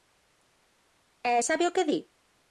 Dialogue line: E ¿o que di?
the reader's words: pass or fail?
fail